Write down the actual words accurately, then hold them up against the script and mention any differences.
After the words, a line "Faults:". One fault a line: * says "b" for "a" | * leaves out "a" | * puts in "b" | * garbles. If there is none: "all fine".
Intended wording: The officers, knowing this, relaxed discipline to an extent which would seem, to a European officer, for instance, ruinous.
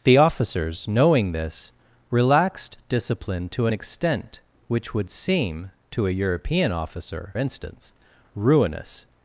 The officers, knowing this, relaxed discipline to an extent which would seem, to a European officer, instance, ruinous.
Faults:
* leaves out "for"